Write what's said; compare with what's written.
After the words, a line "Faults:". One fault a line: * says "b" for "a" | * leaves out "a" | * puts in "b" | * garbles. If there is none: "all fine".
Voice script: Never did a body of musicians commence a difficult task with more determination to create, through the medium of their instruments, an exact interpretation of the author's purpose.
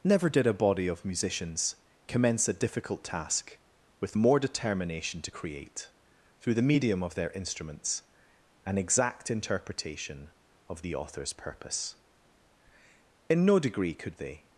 Never did a body of musicians commence a difficult task with more determination to create, through the medium of their instruments, an exact interpretation of the author's purpose. In no degree could they
Faults:
* puts in "In no degree could they"